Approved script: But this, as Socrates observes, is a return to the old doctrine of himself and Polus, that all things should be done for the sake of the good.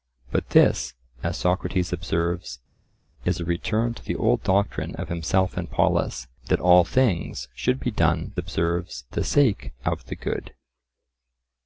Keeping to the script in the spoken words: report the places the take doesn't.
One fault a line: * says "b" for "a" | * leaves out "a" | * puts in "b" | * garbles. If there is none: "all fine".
* says "observes" for "for"